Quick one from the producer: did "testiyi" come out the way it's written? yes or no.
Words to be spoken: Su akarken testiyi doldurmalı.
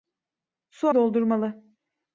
no